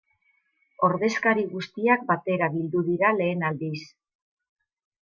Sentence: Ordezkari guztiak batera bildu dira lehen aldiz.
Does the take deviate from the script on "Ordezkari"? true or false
false